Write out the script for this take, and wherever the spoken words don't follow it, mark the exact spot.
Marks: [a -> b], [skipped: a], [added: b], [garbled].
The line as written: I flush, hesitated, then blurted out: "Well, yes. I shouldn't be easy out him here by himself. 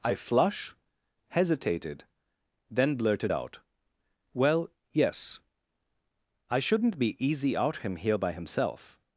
I flush, hesitated, then blurted out: "Well, yes. I shouldn't be easy out him here by himself.